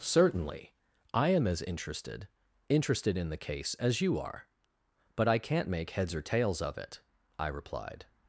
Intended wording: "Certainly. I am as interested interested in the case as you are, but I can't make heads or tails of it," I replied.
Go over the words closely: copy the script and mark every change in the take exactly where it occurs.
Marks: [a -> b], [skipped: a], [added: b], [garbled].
"Certainly. I am as interested interested in the case as you are, but I can't make heads or tails of it," I replied.